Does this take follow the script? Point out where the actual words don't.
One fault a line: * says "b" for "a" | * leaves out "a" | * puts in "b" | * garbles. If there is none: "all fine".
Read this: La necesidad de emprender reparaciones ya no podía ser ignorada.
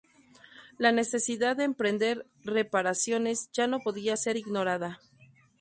all fine